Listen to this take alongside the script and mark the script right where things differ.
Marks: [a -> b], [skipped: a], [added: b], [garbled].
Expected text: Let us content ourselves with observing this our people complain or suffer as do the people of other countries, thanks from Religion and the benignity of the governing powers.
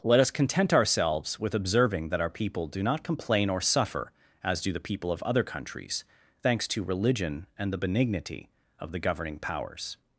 Let us content ourselves with observing [this -> that] our people [added: do not] complain or suffer as do the people of other countries, thanks [from -> to] Religion and the benignity of the governing powers.